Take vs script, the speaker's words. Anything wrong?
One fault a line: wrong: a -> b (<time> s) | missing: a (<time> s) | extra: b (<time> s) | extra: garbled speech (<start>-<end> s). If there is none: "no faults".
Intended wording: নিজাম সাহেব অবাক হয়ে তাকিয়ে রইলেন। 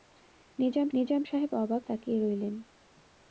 extra: নিজাম (0.9 s)
missing: হয়ে (1.8 s)